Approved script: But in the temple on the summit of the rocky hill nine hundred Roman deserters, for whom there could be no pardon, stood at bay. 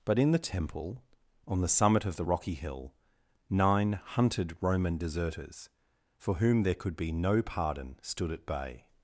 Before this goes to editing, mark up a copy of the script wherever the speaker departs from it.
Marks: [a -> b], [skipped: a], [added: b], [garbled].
But in the temple on the summit of the rocky hill nine [hundred -> hunted] Roman deserters, for whom there could be no pardon, stood at bay.